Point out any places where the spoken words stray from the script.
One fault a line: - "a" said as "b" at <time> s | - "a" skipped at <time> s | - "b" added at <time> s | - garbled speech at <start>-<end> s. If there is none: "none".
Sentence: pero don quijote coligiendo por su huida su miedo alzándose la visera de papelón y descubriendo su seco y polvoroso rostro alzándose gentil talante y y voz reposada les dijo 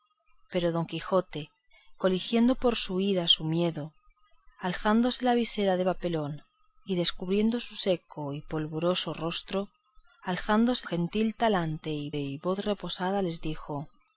none